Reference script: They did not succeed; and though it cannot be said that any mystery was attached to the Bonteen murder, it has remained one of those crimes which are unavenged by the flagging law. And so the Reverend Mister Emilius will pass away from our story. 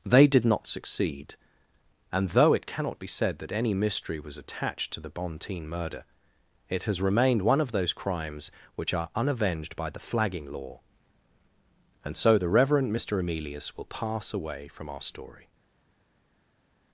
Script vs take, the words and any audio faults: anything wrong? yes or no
no